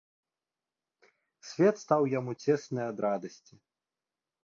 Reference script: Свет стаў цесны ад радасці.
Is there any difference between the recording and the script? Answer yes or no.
yes